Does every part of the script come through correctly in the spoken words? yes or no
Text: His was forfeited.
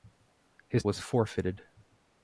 yes